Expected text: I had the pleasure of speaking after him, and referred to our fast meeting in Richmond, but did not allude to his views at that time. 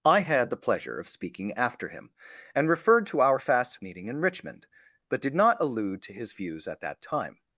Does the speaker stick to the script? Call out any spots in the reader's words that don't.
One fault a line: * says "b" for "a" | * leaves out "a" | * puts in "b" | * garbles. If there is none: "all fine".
all fine